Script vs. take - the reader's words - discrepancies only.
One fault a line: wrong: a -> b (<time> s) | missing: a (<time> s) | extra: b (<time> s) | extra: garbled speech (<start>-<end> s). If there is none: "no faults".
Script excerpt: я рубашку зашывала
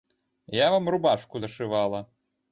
extra: вам (0.7 s)